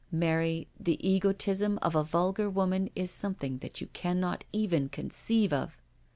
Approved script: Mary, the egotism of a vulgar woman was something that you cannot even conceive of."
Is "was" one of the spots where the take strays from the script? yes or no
yes